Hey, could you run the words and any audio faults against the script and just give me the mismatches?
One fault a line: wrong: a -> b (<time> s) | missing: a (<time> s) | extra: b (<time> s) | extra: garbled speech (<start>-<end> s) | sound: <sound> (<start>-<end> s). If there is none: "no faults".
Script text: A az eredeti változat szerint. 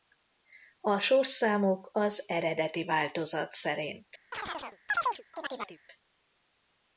extra: sorszámok (1.0 s)
sound: chirp (4.3-5.8 s)